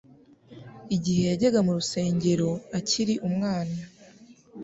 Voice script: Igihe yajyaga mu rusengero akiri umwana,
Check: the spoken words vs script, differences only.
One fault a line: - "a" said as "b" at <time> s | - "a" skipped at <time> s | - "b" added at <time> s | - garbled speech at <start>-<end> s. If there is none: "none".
none